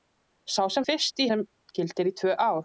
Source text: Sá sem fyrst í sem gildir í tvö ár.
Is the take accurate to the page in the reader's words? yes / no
yes